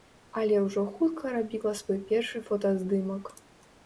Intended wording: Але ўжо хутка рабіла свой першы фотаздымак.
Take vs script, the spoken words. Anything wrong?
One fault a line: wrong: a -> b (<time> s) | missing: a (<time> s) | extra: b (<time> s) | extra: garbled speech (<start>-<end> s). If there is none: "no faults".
no faults